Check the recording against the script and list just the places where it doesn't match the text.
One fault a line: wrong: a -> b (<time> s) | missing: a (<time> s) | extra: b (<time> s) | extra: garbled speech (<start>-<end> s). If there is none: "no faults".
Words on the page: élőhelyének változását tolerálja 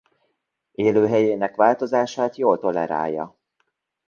extra: jól (2.4 s)